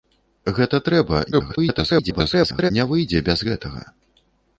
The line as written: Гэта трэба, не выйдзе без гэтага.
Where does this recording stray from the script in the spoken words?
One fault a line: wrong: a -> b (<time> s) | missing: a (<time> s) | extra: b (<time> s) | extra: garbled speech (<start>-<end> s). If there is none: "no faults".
extra: garbled speech (1.3-2.7 s)